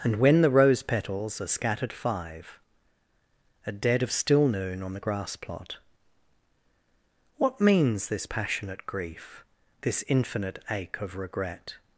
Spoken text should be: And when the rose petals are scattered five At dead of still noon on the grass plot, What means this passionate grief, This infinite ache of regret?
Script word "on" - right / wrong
right